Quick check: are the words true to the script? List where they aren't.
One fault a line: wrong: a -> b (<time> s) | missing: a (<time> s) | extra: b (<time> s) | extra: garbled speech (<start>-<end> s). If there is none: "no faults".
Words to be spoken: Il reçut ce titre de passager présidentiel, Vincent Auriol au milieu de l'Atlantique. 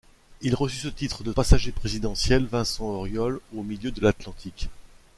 no faults